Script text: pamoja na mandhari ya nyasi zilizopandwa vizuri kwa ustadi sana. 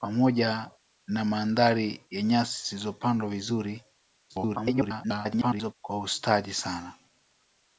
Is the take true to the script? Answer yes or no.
no